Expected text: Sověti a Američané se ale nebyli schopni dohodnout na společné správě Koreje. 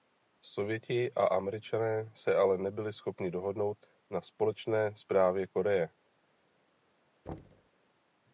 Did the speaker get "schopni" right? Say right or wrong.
right